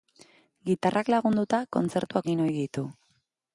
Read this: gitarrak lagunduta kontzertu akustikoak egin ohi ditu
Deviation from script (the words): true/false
true